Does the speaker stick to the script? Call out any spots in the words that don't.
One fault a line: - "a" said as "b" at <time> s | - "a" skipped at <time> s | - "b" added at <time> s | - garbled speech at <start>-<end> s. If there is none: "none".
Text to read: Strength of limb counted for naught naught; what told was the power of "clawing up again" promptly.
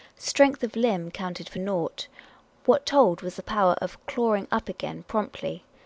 - "naught" skipped at 2.1 s